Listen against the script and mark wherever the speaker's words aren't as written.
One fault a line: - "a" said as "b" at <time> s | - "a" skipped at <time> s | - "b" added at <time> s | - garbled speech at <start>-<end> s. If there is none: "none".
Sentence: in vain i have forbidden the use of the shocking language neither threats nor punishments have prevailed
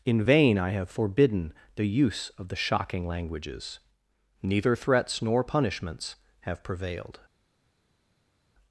- "language" said as "languages" at 3.1 s